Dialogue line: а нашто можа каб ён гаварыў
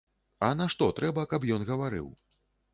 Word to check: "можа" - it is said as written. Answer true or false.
false